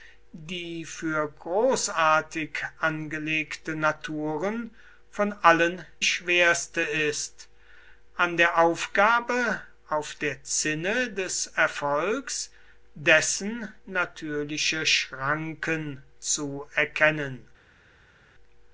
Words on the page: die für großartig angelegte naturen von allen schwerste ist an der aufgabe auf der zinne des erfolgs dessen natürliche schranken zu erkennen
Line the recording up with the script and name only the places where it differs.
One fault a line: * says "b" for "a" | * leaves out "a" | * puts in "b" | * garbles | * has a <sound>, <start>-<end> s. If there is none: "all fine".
all fine